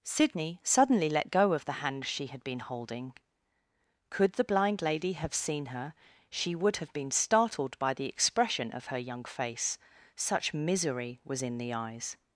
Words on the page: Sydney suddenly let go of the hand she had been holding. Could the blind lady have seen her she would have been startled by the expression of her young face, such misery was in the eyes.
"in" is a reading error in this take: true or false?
false